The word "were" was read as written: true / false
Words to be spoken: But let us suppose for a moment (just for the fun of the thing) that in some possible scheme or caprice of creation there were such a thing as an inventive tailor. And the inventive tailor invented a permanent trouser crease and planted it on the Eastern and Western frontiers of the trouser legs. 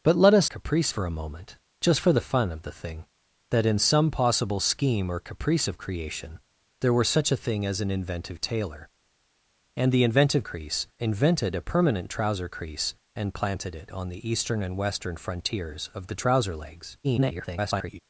true